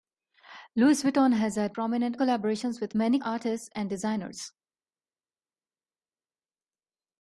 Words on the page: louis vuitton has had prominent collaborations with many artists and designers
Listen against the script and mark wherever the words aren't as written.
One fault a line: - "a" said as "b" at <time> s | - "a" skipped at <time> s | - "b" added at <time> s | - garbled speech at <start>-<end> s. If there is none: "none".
none